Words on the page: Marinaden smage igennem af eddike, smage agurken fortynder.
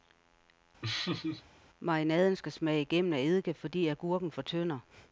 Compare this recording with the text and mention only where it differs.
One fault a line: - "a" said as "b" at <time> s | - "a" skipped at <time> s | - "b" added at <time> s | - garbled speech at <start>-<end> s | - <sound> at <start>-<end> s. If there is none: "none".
- laugh at 0.8-1.4 s
- "skal" added at 2.4 s
- "smage" said as "fordi" at 3.5 s